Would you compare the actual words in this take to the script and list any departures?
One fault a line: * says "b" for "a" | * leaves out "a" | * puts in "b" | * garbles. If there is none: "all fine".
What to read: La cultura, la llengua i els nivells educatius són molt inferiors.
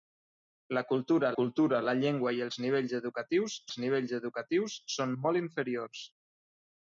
* puts in "cultura"
* puts in "els nivells educatius"